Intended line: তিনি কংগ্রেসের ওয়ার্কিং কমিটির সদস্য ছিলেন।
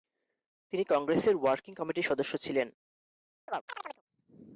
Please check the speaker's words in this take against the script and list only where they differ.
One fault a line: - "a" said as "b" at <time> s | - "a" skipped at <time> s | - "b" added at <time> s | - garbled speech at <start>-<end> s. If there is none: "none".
none